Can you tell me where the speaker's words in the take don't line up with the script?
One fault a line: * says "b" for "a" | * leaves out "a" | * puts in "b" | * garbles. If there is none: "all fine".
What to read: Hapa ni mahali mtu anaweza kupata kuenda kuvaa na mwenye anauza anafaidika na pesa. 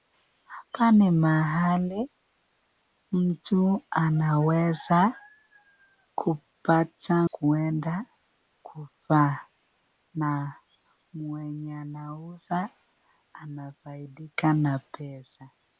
all fine